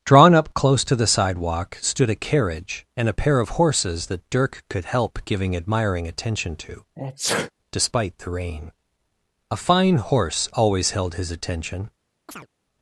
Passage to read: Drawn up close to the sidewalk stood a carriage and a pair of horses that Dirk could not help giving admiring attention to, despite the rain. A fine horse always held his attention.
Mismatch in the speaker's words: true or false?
true